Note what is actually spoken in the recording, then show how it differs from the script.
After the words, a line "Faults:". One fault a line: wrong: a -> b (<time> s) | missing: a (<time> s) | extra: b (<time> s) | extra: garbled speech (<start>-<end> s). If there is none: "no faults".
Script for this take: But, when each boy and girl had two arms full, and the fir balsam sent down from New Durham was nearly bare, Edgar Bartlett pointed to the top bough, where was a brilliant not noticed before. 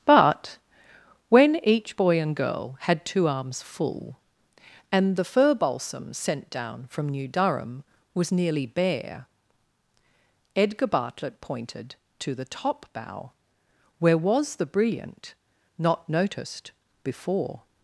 But, when each boy and girl had two arms full, and the fir balsam sent down from New Durham was nearly bare, Edgar Bartlett pointed to the top bough, where was the brilliant not noticed before.
Faults:
wrong: a -> the (14.6 s)